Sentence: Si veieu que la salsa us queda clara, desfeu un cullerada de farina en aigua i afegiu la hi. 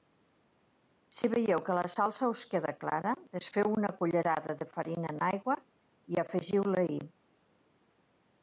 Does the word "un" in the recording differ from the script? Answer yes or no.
yes